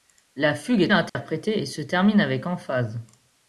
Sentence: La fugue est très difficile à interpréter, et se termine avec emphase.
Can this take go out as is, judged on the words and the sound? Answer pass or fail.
fail